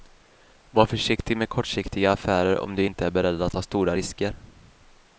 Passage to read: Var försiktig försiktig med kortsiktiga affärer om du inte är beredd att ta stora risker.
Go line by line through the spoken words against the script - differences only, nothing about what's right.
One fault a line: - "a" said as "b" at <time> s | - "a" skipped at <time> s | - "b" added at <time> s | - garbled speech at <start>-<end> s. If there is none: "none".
- "försiktig" skipped at 1.4 s